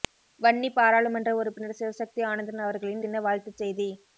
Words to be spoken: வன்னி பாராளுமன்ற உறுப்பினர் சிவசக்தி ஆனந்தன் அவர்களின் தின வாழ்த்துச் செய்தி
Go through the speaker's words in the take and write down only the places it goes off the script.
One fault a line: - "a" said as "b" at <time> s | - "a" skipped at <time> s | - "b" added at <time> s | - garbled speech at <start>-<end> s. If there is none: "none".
none